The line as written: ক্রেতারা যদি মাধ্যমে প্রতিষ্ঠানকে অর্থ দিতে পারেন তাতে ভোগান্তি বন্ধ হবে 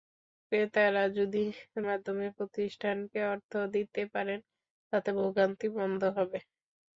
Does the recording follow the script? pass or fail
pass